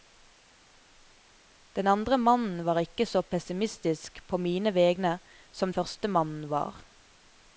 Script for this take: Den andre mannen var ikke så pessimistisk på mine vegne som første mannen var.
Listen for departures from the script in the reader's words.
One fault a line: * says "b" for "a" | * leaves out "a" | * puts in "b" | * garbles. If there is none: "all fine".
all fine